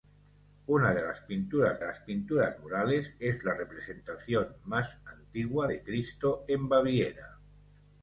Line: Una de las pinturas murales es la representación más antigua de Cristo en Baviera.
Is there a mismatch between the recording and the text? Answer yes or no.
yes